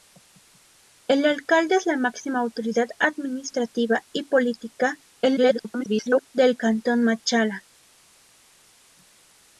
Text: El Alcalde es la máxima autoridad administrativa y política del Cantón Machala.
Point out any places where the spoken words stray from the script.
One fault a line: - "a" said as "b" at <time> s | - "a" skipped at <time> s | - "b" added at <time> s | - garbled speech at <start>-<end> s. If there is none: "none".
- garbled speech at 5.2-6.3 s